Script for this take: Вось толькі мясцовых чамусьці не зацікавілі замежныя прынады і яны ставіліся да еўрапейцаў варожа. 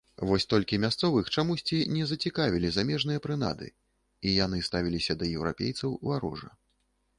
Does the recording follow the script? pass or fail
pass